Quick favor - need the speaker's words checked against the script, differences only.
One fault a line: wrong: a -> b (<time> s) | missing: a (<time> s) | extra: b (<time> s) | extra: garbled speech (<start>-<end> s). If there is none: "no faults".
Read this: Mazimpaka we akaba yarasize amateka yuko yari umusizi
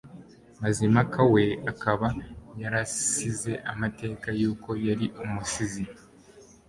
no faults